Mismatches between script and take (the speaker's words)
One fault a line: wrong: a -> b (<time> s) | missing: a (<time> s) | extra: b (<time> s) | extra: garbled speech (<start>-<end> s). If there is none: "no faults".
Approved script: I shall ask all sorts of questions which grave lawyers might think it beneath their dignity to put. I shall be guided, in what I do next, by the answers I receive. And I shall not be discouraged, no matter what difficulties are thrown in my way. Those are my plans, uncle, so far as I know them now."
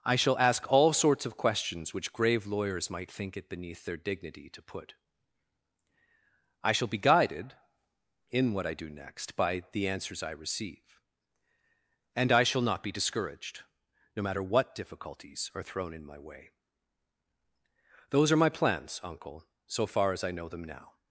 no faults